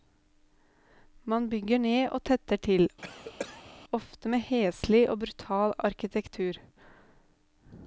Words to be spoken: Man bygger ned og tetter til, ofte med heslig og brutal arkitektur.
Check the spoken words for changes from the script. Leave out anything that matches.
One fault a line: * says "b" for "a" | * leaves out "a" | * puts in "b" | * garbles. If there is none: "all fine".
all fine